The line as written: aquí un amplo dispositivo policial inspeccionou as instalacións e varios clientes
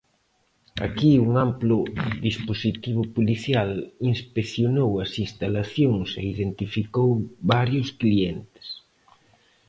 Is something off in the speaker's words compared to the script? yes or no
yes